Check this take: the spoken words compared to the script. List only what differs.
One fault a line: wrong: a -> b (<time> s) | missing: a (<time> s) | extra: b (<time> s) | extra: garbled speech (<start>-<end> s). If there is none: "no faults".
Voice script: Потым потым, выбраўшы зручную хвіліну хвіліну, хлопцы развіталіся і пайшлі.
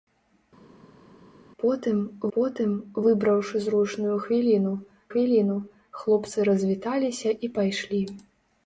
no faults